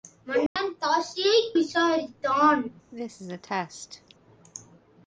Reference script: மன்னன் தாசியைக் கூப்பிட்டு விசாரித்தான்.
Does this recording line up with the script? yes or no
no